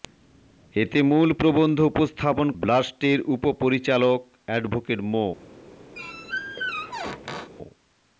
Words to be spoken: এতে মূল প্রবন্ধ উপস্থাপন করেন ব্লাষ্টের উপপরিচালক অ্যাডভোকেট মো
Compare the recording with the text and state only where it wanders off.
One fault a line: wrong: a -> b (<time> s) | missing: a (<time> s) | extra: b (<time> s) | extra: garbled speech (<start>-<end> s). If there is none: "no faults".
missing: করেন (2.5 s)